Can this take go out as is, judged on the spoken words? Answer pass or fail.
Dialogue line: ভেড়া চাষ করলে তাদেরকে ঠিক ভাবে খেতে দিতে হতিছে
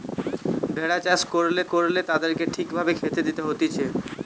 fail